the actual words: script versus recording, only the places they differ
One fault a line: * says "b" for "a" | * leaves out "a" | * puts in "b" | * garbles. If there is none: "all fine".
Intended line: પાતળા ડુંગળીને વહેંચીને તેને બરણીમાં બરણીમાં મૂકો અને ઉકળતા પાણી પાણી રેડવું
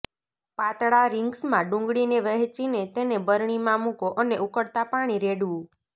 * puts in "રિંગ્સમાં"
* leaves out "બરણીમાં"
* leaves out "પાણી"